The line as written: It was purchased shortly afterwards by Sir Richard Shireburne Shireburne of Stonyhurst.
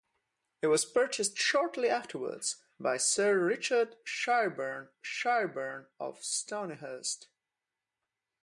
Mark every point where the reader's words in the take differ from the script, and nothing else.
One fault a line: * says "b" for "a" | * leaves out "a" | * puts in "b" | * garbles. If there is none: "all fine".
all fine